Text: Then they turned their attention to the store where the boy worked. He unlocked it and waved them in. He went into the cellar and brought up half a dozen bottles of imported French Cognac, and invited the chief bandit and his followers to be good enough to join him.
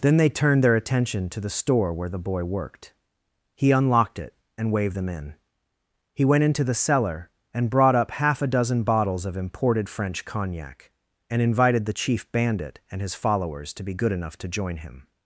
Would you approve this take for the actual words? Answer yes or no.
yes